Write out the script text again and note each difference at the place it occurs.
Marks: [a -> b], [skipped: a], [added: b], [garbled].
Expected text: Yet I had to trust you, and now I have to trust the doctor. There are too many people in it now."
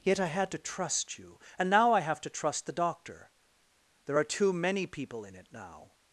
Yet I had to trust you, and now I have to trust the doctor. There are too many people in it now."